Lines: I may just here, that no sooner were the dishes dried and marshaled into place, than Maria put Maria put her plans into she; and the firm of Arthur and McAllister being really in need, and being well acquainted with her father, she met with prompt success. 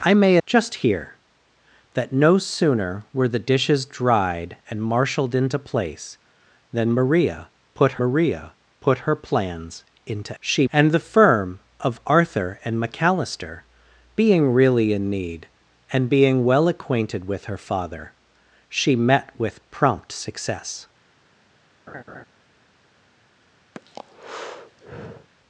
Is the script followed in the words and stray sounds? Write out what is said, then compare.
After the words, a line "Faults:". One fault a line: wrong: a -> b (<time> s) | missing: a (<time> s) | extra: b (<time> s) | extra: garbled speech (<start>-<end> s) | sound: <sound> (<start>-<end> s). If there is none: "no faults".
I may just here, that no sooner were the dishes dried and marshaled into place, than Maria put Maria put her plans into she; and the firm of Arthur and McAllister being really in need, and being well acquainted with her father, she met with prompt success.
Faults:
sound: laugh (21.9-22.2 s)
sound: breath (23.7-25.3 s)